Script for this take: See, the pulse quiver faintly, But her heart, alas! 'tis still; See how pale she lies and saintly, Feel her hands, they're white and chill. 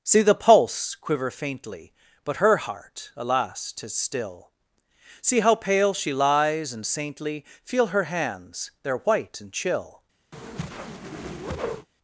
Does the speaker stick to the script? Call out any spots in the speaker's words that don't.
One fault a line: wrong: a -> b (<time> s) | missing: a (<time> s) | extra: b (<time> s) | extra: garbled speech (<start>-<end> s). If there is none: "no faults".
no faults